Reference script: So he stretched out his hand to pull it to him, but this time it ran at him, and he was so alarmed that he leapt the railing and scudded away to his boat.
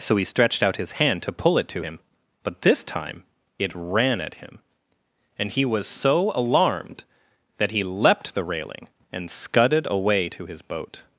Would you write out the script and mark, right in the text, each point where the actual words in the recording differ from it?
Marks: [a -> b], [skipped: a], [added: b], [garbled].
So he stretched out his hand to pull it to him, but this time it ran at him, and he was so alarmed that he leapt the railing and scudded away to his boat.